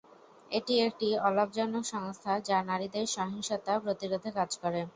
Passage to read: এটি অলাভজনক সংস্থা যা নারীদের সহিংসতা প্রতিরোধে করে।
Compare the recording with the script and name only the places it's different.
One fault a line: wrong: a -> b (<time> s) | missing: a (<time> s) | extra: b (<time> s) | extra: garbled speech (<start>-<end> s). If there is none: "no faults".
extra: একটি (0.9 s)
extra: কাজ (4.4 s)